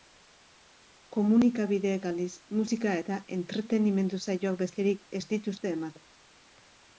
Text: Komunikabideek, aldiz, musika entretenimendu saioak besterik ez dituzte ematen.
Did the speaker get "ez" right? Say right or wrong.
right